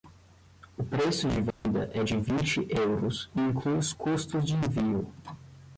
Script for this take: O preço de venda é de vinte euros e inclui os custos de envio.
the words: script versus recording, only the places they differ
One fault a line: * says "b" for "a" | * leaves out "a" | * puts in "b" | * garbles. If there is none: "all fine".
all fine